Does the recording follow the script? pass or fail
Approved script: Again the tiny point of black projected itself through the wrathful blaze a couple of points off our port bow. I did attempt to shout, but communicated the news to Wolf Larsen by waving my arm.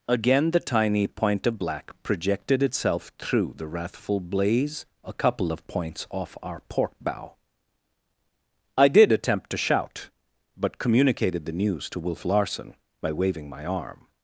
pass